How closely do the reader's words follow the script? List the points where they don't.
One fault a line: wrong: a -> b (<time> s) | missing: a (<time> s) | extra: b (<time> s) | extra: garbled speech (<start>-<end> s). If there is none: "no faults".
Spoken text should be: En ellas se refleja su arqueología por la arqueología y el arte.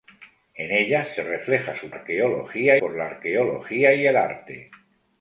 no faults